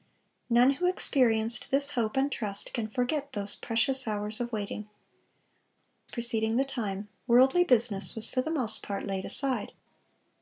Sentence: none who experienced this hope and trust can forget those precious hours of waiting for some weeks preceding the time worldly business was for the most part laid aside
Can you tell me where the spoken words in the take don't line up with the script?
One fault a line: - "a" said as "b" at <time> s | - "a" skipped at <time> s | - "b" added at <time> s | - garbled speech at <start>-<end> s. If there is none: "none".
- "for some weeks" skipped at 4.9 s